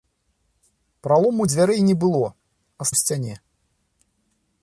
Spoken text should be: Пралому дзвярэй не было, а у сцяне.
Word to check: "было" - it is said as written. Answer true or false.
true